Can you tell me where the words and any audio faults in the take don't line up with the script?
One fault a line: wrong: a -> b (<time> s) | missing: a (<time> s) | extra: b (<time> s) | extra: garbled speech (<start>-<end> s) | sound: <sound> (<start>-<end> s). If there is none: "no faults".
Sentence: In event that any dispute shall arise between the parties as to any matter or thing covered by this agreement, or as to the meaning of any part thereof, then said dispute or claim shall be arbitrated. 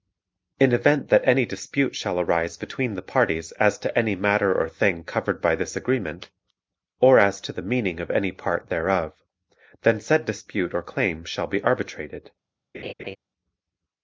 sound: laugh (12.7-13.2 s)